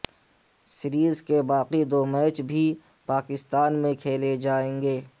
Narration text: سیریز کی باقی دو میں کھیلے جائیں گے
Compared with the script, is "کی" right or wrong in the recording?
wrong